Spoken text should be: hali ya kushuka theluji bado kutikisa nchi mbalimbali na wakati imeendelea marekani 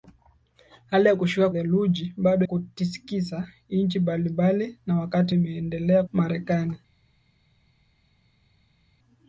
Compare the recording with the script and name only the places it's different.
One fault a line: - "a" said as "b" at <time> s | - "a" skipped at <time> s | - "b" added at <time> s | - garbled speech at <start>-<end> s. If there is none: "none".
none